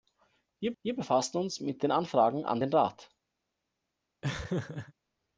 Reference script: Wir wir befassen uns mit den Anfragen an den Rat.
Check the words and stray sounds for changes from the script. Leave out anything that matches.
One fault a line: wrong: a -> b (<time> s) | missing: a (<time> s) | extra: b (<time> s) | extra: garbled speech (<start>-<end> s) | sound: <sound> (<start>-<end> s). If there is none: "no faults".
sound: laugh (4.2-4.9 s)